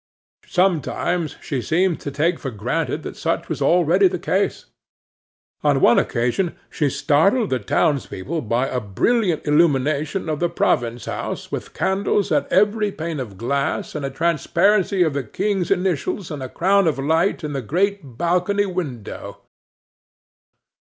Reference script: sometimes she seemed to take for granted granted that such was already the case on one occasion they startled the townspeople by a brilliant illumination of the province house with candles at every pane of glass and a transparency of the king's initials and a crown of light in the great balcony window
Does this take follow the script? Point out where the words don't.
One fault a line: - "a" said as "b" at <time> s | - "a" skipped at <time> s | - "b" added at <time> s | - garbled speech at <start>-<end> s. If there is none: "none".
- "granted" skipped at 3.0 s
- "they" said as "she" at 6.7 s